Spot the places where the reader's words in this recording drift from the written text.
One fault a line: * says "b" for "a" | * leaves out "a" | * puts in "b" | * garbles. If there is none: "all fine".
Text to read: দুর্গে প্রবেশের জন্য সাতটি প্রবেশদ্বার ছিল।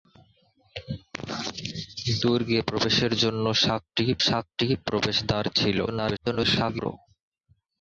* puts in "সাতটি"
* garbles